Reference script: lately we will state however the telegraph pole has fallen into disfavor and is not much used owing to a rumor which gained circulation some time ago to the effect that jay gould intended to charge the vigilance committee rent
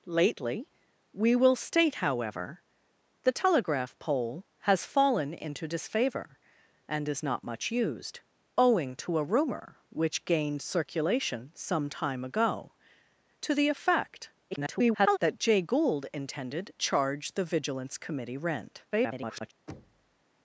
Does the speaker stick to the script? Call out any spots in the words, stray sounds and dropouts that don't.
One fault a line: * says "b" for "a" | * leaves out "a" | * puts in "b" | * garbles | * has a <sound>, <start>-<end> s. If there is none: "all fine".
* garbles
* leaves out "to"
* garbles
* has a thud, 19.7-20.2 s